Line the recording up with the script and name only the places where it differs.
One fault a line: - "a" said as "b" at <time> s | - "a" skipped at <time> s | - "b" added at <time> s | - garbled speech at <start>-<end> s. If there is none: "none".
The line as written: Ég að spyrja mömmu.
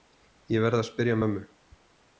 - "verð" added at 0.7 s